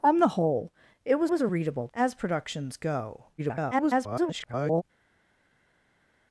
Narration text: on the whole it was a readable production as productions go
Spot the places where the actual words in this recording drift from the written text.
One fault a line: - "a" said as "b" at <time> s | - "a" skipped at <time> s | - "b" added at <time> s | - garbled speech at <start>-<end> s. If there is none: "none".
- "was" added at 1.3 s
- "production" skipped at 1.9 s
- garbled speech at 3.4-4.8 s